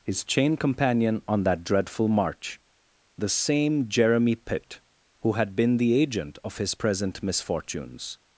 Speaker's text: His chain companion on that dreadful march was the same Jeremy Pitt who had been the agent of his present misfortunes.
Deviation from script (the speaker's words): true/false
true